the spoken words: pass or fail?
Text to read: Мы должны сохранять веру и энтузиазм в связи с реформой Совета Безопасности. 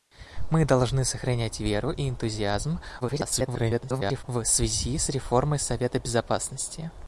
fail